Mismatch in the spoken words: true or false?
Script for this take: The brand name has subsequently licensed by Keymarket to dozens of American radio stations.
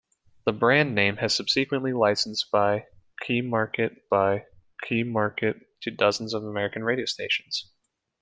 true